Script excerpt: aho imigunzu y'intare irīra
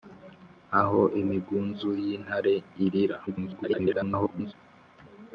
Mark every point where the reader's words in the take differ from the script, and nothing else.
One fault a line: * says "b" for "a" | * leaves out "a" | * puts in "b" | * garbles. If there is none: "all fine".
* garbles